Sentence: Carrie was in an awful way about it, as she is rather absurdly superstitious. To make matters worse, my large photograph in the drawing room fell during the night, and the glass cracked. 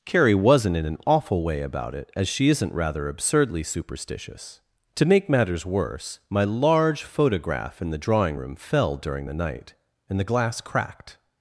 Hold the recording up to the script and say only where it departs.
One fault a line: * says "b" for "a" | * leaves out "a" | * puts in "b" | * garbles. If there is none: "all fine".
* says "wasn't" for "was"
* says "isn't" for "is"